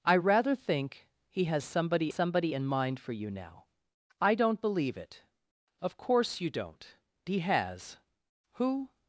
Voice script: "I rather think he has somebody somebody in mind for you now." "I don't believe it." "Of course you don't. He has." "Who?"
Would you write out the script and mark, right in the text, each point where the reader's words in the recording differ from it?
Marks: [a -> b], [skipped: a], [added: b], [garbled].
"I rather think he has somebody somebody in mind for you now." "I don't believe it." "Of course you don't. He has." "Who?"